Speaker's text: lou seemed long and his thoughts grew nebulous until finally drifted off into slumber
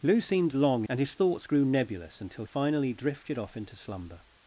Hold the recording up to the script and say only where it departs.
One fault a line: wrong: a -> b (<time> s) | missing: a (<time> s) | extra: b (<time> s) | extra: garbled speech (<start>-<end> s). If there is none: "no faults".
no faults